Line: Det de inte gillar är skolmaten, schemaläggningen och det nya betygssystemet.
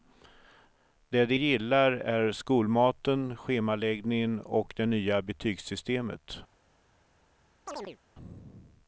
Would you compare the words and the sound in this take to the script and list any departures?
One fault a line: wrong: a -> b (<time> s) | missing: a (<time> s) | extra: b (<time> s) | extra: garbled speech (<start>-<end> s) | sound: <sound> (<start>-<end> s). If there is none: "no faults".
missing: inte (1.4 s)
sound: chirp (7.7-8.0 s)